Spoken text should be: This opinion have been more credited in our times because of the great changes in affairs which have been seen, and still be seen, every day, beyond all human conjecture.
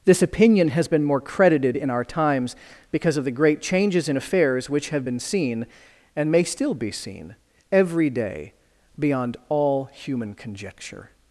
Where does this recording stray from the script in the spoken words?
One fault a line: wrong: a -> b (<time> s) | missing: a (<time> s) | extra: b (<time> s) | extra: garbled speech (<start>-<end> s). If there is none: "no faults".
wrong: have -> has (0.7 s)
extra: may (6.3 s)